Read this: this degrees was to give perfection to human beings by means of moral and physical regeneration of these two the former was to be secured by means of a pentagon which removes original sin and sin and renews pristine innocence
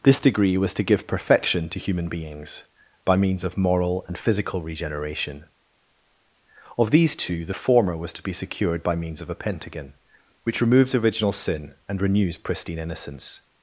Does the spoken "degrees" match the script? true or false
false